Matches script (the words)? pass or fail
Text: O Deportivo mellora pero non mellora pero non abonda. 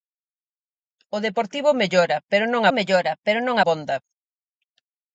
pass